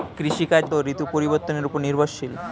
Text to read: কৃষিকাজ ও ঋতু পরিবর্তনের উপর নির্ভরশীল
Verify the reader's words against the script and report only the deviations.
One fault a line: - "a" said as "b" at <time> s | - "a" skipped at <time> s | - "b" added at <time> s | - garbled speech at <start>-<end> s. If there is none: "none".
none